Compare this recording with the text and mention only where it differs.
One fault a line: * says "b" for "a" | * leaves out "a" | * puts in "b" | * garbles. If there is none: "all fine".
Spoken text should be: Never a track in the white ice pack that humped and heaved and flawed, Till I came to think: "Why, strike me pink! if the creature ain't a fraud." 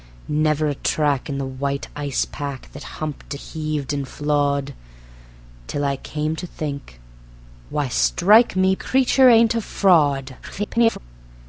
* leaves out "and"
* leaves out "pink if the"
* garbles